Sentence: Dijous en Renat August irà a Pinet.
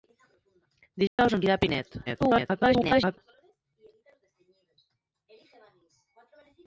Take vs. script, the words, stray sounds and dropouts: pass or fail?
fail